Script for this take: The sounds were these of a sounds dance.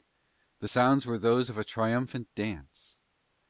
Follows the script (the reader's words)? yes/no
no